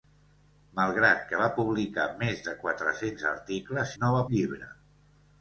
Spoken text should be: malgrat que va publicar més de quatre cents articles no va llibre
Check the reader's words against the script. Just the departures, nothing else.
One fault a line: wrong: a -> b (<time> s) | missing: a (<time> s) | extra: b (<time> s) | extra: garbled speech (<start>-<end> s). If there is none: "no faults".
no faults